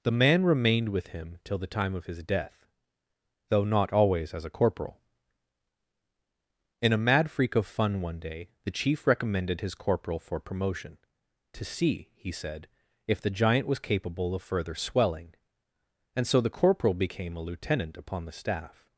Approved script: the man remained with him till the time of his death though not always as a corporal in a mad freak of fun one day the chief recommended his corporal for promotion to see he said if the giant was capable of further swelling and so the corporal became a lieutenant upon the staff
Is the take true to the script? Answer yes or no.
yes